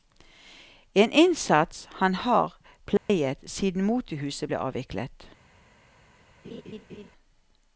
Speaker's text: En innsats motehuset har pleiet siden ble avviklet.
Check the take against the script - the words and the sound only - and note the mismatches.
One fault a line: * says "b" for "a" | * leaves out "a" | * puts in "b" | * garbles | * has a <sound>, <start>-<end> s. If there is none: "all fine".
* says "han" for "motehuset"
* has a dropout, 3.0-3.1 s
* puts in "motehuset"
* has a laugh, 6.4-7.1 s